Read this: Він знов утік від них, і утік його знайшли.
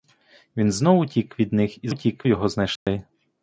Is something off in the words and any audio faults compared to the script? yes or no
yes